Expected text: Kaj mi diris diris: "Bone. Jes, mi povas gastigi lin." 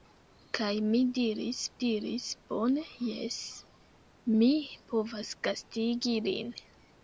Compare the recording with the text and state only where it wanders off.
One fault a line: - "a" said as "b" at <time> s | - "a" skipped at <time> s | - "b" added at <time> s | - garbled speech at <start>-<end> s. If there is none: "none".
none